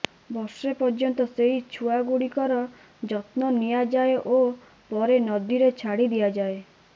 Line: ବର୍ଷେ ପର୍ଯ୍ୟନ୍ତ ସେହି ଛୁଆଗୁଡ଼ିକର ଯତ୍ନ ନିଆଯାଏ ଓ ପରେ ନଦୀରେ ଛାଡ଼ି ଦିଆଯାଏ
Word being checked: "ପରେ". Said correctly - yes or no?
yes